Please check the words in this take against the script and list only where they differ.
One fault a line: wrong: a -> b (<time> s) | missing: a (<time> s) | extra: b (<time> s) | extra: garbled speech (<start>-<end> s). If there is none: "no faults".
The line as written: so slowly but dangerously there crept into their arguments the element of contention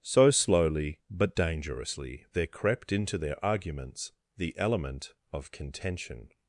no faults